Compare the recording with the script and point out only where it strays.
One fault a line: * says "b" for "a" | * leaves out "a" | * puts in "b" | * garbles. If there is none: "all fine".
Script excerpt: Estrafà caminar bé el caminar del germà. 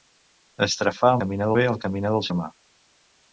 all fine